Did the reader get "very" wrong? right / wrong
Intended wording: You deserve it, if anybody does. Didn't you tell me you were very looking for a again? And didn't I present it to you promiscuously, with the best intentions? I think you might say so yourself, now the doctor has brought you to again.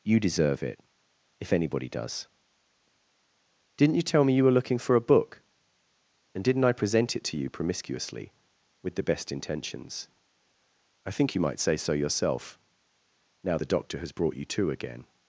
wrong